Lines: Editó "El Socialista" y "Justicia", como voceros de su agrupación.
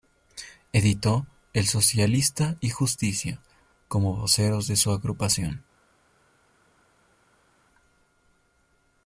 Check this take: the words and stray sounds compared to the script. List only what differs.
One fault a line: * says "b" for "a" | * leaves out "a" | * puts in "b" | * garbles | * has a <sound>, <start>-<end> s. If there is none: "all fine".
all fine